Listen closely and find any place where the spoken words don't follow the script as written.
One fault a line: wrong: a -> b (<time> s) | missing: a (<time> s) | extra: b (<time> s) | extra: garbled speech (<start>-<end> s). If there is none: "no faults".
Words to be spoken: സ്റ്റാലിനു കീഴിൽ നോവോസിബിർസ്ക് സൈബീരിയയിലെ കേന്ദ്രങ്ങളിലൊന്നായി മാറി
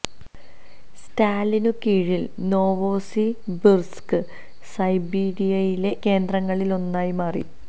no faults